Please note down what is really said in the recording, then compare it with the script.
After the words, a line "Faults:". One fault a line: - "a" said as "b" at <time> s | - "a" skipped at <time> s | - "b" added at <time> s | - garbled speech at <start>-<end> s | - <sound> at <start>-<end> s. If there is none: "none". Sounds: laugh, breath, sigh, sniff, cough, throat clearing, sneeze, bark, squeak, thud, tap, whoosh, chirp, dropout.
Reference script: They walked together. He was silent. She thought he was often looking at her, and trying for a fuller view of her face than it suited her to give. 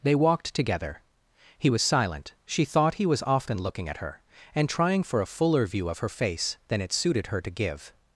They walked together. He was silent. She thought he was often looking at her, and trying for a fuller view of her face than it suited her to give.
Faults:
none